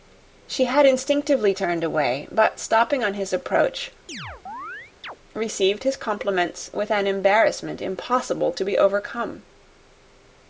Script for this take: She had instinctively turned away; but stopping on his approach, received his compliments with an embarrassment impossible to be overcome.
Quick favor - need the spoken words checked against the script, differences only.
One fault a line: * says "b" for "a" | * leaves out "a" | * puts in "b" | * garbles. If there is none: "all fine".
all fine